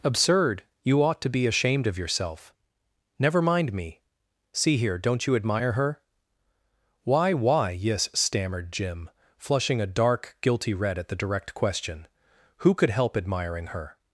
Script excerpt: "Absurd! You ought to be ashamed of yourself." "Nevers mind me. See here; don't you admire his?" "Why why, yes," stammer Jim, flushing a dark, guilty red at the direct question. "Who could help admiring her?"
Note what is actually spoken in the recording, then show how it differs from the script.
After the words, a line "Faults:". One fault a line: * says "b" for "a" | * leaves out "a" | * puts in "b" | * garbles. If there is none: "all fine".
"Absurd! You ought to be ashamed of yourself." "Never mind me. See here; don't you admire her?" "Why why, yes," stammered Jim, flushing a dark, guilty red at the direct question. "Who could help admiring her?"
Faults:
* says "Never" for "Nevers"
* says "her" for "his"
* says "stammered" for "stammer"